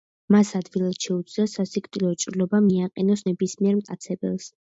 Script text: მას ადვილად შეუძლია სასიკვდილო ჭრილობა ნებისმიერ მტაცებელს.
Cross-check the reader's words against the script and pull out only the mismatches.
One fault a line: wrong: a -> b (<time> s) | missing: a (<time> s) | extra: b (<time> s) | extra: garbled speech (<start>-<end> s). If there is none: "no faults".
extra: მიაყენოს (2.7 s)